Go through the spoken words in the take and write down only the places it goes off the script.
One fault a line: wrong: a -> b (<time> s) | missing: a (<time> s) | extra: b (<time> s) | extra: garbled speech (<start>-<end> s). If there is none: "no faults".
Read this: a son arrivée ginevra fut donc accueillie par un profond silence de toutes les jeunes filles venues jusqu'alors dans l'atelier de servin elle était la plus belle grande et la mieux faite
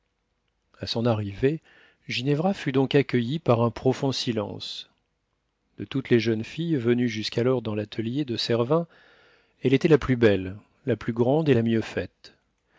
extra: la plus (10.8 s)